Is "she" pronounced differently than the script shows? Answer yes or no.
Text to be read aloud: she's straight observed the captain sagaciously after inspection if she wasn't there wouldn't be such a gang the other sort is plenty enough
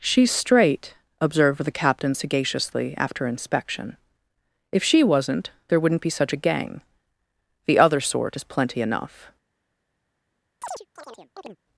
no